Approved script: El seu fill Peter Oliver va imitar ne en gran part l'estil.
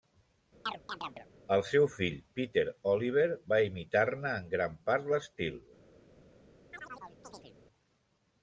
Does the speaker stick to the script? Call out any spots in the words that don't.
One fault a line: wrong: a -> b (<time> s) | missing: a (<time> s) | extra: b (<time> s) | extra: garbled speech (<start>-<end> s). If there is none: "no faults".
no faults